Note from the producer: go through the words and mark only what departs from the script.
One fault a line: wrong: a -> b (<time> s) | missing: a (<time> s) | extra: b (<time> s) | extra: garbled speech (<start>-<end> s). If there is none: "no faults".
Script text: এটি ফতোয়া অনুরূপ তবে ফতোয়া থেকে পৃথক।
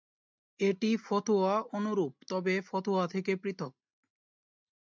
no faults